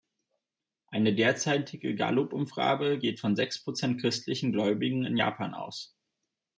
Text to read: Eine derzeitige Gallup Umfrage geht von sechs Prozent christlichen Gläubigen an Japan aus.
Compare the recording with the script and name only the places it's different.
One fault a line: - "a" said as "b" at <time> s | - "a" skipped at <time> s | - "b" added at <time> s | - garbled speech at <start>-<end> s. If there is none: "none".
- "an" said as "in" at 5.0 s